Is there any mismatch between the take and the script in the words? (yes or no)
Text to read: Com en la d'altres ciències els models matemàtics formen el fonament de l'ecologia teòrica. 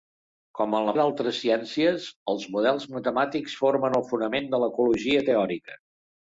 no